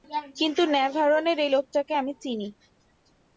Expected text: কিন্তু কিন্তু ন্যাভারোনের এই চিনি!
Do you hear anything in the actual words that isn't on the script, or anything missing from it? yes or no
yes